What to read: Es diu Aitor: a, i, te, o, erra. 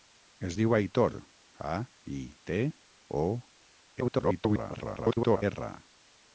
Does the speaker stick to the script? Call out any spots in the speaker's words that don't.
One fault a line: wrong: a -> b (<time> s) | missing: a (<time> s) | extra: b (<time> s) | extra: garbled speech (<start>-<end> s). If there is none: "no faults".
extra: garbled speech (4.0-5.4 s)